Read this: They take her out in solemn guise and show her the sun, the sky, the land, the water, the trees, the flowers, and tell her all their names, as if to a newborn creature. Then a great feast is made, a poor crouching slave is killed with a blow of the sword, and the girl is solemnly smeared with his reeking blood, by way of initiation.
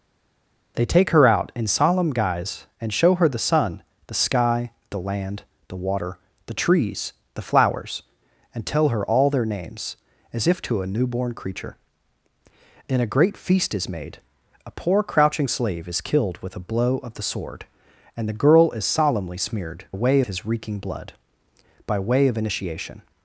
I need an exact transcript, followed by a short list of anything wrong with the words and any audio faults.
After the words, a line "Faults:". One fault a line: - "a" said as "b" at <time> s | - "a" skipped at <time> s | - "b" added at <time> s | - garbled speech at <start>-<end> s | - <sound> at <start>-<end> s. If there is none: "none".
They take her out in solemn guise and show her the sun, the sky, the land, the water, the trees, the flowers, and tell her all their names, as if to a newborn creature. Then a great feast is made, a poor crouching slave is killed with a blow of the sword, and the girl is solemnly smeared way his reeking blood, by way of initiation.
Faults:
- "with" said as "way" at 19.9 s